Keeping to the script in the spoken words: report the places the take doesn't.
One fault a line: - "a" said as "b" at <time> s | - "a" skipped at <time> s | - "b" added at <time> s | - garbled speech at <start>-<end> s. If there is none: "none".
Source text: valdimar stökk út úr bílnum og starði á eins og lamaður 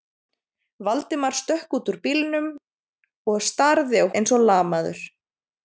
none